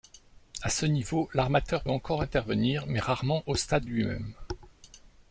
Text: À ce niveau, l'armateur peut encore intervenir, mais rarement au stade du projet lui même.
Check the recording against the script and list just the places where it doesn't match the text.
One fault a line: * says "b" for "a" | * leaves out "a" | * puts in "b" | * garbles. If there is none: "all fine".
* leaves out "peut"
* leaves out "du projet"